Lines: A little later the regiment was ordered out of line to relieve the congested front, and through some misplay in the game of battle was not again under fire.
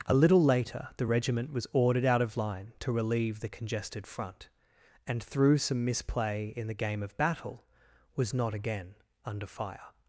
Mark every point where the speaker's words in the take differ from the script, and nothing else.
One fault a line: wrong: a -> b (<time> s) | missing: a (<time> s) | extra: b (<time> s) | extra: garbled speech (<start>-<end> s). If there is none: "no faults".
no faults